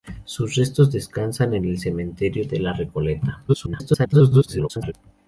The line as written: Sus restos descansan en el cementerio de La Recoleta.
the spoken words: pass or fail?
fail